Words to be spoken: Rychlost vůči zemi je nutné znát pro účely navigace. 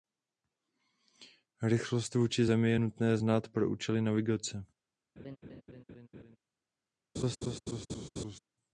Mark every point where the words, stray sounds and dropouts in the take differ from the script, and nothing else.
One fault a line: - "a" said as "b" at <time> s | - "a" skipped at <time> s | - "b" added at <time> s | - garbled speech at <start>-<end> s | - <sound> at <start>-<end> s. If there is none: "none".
- laugh at 5.2-6.4 s
- laugh at 7.2-8.4 s